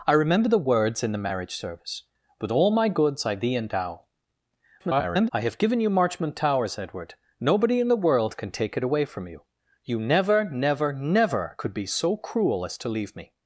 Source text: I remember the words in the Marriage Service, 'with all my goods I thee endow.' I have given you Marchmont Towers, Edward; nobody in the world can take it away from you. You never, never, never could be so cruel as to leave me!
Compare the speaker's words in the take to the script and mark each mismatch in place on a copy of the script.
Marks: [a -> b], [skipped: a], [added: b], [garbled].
I remember the words in the Marriage Service, 'with all my goods I thee endow.' [garbled] I have given you Marchmont Towers, Edward; nobody in the world can take it away from you. You never, never, never could be so cruel as to leave me!